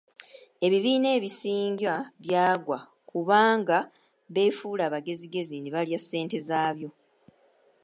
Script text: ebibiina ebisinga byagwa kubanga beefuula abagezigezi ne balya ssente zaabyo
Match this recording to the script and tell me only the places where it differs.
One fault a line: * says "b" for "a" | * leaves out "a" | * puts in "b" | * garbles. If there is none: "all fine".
all fine